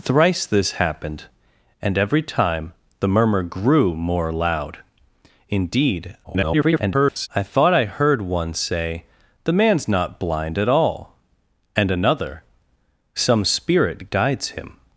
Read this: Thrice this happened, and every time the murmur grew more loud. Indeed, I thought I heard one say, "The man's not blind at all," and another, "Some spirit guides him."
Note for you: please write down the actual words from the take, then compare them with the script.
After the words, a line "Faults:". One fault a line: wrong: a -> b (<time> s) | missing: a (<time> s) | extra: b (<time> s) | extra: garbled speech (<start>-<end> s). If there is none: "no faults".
Thrice this happened, and every time the murmur grew more loud. Indeed, [garbled] I thought I heard one say, "The man's not blind at all," and another, "Some spirit guides him."
Faults:
extra: garbled speech (6.2-7.3 s)